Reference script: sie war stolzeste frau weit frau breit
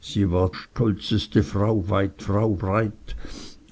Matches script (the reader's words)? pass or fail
pass